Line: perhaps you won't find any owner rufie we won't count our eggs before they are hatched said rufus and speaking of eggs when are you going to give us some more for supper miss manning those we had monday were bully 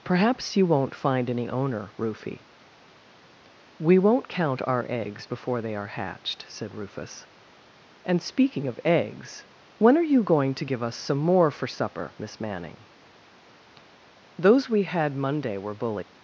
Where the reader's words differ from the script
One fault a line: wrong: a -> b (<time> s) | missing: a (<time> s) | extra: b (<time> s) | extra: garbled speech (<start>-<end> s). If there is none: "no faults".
no faults